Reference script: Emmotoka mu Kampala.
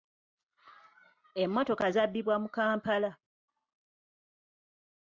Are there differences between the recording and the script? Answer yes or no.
yes